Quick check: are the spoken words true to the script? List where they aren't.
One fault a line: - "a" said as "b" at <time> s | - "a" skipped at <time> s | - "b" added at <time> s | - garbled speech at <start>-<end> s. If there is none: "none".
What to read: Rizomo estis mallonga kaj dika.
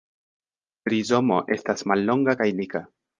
- "estis" said as "estas" at 1.6 s